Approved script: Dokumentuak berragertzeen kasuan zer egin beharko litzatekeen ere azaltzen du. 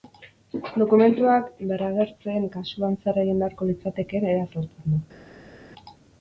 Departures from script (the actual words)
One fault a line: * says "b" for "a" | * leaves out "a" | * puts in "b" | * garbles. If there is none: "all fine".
all fine